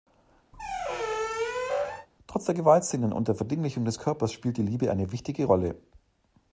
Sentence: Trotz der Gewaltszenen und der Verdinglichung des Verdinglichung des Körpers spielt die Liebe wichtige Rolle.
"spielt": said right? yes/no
yes